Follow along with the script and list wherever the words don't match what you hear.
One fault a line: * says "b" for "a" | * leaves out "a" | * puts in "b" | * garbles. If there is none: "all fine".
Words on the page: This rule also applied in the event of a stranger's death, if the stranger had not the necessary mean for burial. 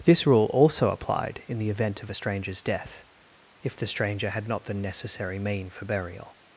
all fine